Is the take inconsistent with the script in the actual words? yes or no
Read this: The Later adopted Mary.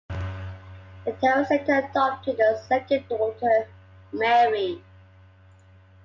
yes